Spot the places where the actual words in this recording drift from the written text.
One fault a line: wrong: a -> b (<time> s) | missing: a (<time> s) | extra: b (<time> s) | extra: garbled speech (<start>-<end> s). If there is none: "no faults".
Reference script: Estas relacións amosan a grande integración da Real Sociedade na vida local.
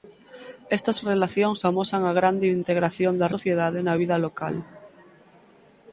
missing: Real (3.3 s)